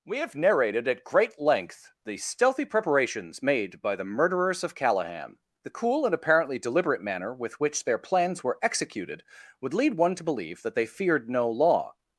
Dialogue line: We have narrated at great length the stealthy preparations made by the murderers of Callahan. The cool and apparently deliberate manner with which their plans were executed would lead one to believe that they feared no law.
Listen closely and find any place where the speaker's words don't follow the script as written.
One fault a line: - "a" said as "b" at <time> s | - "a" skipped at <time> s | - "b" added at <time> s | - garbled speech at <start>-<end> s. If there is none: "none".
none